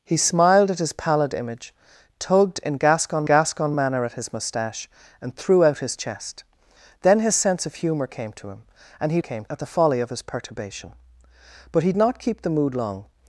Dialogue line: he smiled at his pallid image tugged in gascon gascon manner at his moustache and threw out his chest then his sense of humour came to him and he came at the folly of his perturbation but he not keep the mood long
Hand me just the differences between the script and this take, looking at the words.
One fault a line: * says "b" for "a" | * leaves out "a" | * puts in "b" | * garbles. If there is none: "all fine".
all fine